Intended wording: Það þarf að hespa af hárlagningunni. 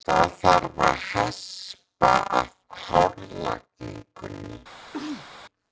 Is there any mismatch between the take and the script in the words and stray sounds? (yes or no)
yes